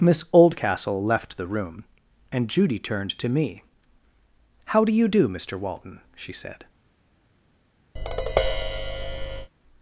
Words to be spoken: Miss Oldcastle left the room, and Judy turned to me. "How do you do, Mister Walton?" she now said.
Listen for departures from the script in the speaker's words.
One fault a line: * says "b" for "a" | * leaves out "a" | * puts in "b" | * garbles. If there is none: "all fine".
* leaves out "now"